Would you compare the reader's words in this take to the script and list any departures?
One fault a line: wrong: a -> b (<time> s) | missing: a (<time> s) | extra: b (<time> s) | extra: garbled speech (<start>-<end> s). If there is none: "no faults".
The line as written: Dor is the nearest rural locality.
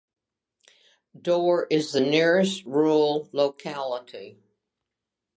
no faults